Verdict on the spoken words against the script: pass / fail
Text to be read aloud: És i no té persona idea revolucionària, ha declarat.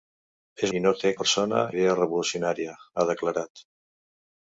pass